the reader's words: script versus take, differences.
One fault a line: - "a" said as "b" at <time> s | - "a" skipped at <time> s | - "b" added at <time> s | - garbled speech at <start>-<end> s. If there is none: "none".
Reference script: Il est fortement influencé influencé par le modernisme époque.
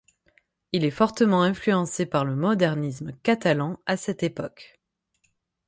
- "influencé" skipped at 2.1 s
- "catalan à cette" added at 3.2 s